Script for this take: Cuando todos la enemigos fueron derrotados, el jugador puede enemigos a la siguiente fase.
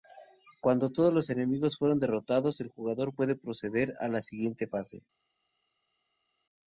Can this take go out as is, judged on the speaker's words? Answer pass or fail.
fail